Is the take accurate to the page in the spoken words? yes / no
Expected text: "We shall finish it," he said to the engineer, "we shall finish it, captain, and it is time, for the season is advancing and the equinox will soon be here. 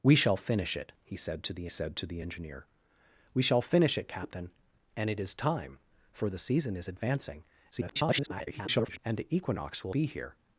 no